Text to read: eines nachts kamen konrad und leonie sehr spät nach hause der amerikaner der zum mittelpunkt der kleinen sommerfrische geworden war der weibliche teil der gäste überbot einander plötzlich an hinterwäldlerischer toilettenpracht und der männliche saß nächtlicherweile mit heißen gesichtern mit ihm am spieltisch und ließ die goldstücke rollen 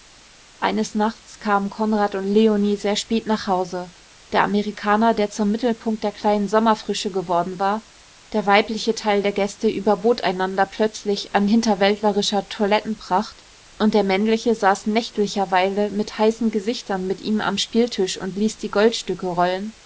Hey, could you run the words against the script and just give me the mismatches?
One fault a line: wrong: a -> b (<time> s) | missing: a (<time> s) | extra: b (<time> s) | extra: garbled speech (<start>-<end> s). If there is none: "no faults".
no faults